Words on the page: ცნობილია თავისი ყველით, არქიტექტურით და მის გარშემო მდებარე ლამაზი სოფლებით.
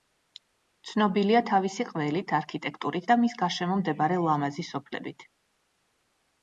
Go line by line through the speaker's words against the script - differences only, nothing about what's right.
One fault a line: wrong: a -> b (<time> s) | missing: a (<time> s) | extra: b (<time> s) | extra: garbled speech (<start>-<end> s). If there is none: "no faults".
no faults